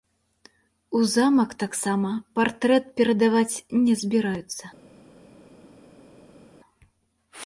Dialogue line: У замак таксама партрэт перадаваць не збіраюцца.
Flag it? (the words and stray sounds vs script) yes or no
no